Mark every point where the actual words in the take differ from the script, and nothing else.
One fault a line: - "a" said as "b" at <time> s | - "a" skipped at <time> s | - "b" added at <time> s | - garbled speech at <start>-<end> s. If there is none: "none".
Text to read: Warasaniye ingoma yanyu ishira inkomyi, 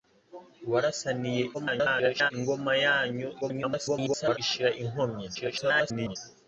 - garbled speech at 1.5-2.3 s
- garbled speech at 3.4-4.4 s
- garbled speech at 5.3-6.2 s